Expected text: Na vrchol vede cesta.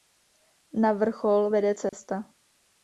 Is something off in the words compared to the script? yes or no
no